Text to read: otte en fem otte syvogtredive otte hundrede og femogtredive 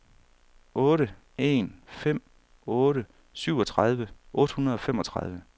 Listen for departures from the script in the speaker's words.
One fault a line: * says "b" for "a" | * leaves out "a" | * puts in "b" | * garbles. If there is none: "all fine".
all fine